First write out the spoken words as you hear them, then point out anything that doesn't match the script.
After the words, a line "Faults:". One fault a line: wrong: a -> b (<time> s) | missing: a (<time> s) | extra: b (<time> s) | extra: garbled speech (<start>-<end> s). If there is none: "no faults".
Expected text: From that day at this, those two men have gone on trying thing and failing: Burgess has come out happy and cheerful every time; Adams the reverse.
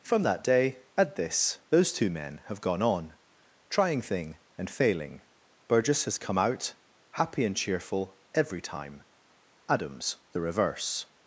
From that day at this, those two men have gone on trying thing and failing: Burgess has come out happy and cheerful every time; Adams the reverse.
Faults:
no faults